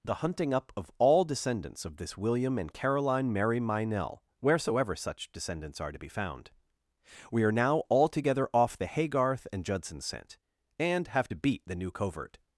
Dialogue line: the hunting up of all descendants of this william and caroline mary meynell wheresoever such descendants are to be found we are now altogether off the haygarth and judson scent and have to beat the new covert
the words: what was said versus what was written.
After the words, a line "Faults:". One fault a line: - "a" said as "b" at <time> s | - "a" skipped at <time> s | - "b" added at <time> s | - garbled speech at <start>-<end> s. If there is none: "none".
the hunting up of all descendants of this william and caroline mary meynell wheresoever such descendants are to be found we are now altogether off the haygarth and judson scent and have to beat the new covert
Faults:
none